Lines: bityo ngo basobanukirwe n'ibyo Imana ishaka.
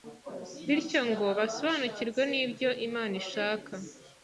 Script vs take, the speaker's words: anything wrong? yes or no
no